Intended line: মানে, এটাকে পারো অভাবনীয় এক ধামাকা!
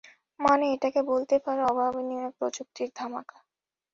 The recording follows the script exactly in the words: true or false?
false